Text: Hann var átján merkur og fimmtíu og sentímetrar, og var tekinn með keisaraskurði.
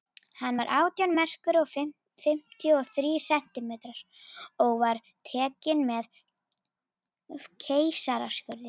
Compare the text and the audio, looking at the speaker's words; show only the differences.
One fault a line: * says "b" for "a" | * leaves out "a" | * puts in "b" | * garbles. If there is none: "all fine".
* puts in "þrír"